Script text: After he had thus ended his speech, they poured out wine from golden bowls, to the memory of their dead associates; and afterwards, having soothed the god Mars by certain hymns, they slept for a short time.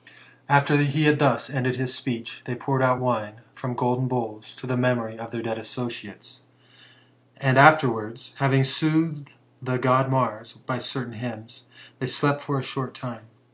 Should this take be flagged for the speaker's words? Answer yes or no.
no